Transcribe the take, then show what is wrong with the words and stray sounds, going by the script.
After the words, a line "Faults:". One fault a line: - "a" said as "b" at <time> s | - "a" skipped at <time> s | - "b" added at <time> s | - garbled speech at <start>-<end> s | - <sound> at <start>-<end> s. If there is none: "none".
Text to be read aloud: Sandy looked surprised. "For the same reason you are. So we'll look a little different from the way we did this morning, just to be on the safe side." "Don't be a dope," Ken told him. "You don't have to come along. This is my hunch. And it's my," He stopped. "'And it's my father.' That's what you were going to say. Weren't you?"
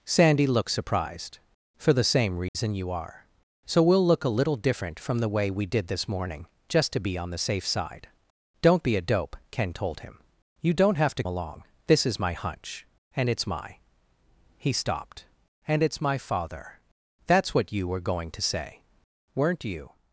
Sandy looked surprised. "For the same reason you are. So we'll look a little different from the way we did this morning, just to be on the safe side." "Don't be a dope," Ken told him. "You don't have to along. This is my hunch. And it's my," He stopped. "'And it's my father.' That's what you were going to say. Weren't you?"
Faults:
- dropout at 2.5-2.5 s
- "come" skipped at 11.2 s